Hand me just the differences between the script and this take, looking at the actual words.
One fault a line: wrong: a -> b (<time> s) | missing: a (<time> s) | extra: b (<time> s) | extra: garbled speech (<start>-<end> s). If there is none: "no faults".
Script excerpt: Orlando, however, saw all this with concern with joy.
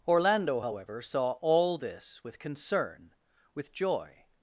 no faults